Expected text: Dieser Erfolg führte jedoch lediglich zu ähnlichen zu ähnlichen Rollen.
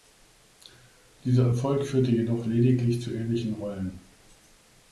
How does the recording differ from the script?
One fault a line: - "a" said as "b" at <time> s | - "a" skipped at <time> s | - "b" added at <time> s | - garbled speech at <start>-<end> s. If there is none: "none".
- "zu ähnlichen" skipped at 3.6 s